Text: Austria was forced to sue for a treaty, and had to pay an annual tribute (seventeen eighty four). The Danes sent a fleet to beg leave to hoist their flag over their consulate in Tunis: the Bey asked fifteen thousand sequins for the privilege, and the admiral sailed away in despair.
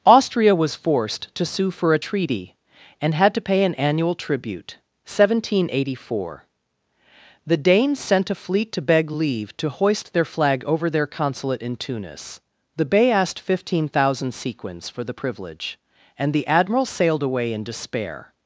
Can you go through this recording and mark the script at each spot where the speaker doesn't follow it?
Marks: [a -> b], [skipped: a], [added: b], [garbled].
Austria was forced to sue for a treaty, and had to pay an annual tribute (seventeen eighty four). The Danes sent a fleet to beg leave to hoist their flag over their consulate in Tunis: the Bey asked fifteen thousand sequins for the privilege, and the admiral sailed away in despair.